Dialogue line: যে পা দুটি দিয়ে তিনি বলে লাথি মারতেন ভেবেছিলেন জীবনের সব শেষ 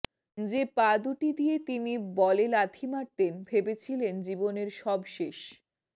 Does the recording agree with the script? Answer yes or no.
yes